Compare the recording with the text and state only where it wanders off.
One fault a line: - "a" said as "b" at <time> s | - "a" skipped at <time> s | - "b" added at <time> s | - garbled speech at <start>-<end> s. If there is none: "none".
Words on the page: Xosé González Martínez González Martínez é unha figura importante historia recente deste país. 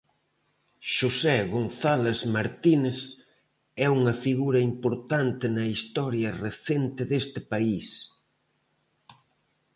- "González Martínez" skipped at 3.0 s
- "na" added at 5.5 s